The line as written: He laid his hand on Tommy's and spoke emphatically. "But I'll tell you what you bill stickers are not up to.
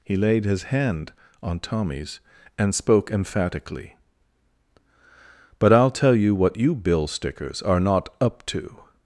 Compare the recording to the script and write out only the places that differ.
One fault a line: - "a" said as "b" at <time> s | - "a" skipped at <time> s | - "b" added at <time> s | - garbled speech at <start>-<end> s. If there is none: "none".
none